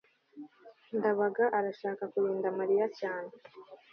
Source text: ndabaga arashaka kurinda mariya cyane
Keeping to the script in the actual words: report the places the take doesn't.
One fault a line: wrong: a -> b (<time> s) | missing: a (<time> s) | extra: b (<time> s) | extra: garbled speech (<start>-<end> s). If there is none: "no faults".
no faults